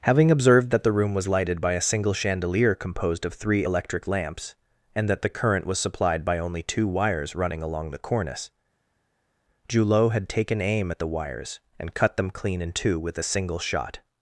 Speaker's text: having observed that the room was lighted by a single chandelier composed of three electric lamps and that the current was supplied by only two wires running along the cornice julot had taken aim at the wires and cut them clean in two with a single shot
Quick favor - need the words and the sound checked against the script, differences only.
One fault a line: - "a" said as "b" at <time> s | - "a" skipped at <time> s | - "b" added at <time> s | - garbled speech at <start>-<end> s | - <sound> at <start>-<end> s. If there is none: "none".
none